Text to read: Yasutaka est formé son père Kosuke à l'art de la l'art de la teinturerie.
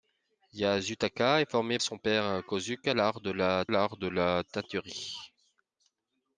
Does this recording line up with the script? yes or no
yes